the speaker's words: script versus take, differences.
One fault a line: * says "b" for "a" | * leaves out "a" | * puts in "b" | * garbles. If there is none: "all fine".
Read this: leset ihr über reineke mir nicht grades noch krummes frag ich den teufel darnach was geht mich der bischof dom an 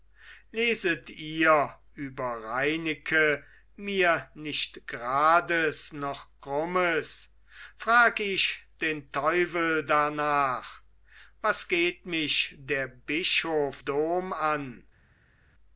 all fine